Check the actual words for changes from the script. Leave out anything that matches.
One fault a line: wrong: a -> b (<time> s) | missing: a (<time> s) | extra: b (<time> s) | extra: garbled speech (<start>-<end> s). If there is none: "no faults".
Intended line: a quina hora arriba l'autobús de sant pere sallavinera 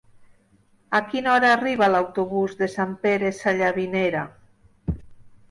no faults